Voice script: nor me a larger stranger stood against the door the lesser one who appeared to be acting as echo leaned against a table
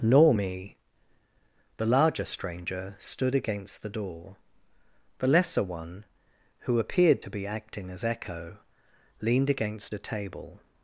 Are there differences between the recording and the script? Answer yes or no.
yes